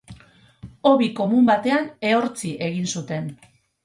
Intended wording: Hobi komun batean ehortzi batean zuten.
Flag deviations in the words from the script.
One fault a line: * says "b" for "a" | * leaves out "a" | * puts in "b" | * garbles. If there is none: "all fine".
* says "egin" for "batean"